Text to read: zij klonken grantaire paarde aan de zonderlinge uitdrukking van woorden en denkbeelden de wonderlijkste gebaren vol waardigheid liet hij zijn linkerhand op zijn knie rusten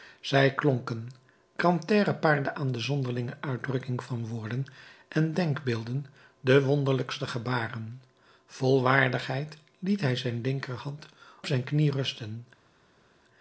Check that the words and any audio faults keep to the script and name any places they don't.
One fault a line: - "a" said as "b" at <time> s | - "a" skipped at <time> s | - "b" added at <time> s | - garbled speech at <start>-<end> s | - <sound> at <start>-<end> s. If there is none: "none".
- "op" skipped at 11.1 s